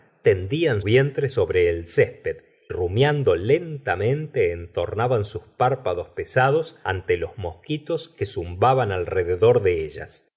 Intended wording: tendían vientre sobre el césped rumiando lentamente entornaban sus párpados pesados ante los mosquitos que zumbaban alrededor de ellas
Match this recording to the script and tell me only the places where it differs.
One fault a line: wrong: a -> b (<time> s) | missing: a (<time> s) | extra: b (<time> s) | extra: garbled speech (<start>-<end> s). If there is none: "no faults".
no faults